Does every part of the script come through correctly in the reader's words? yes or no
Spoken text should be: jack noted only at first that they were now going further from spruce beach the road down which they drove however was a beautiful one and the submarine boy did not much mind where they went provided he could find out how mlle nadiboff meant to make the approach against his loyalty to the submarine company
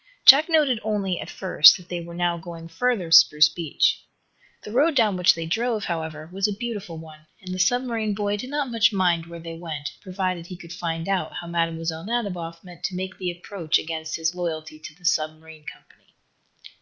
no